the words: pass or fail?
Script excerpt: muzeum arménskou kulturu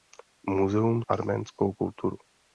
pass